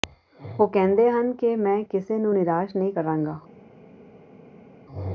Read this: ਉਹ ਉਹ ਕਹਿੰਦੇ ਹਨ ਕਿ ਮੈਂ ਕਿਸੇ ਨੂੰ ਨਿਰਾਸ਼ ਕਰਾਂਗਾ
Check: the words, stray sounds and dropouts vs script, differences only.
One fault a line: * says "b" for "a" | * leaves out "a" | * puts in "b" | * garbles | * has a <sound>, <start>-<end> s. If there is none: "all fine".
* leaves out "ਉਹ"
* puts in "ਨਹੀਂ"